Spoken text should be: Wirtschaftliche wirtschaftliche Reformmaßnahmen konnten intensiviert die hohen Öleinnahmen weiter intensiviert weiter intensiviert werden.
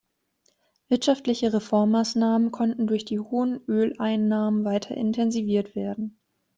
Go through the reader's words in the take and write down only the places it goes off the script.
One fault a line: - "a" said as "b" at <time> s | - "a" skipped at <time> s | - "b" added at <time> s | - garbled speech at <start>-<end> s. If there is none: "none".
- "wirtschaftliche" skipped at 1.5 s
- "intensiviert" said as "durch" at 2.9 s
- "weiter intensiviert" skipped at 5.8 s